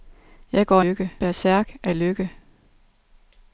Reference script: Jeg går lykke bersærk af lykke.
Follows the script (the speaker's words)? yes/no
yes